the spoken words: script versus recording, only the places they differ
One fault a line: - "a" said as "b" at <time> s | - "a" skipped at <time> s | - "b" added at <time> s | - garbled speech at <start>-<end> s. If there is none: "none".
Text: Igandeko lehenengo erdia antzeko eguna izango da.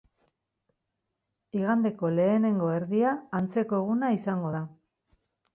none